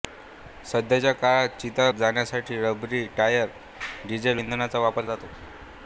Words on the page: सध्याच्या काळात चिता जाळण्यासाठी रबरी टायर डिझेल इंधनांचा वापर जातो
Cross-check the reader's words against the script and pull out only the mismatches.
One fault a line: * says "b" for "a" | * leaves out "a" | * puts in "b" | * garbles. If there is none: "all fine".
all fine